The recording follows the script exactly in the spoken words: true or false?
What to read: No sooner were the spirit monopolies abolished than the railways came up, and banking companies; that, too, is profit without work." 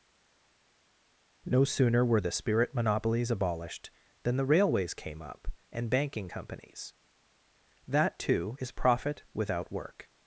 true